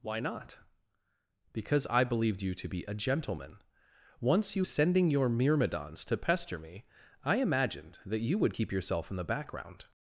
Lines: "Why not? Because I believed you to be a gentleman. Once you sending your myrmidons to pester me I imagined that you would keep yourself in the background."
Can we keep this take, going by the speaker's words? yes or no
yes